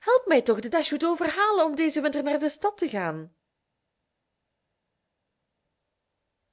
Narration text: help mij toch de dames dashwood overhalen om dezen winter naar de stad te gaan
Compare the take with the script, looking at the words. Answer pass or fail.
fail